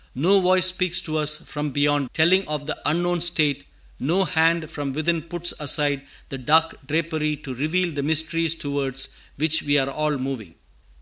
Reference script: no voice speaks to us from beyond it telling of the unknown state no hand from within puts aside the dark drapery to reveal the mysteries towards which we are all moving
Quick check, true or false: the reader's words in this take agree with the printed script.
false